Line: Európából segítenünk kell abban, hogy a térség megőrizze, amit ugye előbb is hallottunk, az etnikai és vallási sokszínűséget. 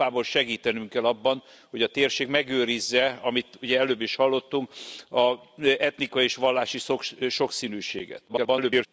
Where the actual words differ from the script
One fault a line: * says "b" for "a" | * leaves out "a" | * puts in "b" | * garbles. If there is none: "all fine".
* garbles